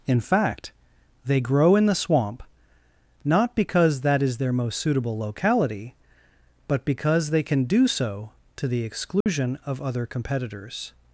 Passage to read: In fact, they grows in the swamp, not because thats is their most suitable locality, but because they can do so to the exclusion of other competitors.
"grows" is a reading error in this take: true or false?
true